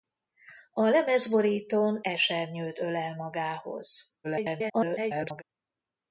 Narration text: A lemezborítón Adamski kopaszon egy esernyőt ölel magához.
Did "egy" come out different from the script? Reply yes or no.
yes